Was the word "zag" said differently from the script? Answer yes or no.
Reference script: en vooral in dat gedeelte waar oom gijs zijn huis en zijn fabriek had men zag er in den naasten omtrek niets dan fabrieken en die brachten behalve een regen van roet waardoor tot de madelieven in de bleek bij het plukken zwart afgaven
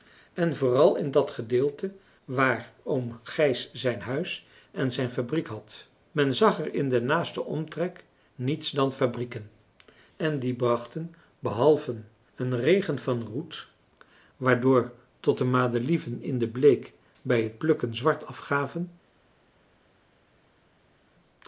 no